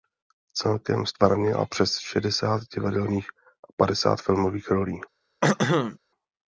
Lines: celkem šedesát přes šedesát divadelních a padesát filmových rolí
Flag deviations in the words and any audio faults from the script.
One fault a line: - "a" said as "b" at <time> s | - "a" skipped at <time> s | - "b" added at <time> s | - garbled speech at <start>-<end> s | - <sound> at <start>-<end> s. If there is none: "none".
- "šedesát" said as "ztvárnila" at 1.1 s
- throat clearing at 5.4-6.0 s